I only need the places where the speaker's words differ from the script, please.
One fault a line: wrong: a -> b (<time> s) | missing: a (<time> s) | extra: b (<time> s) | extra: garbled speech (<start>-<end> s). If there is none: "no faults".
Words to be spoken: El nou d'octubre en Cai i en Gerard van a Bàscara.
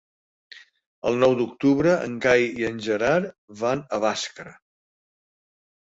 no faults